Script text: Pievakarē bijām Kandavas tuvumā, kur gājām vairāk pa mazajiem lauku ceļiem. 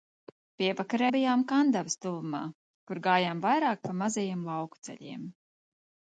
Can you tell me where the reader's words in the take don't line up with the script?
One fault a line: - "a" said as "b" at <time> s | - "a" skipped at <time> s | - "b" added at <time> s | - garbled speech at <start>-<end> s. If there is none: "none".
none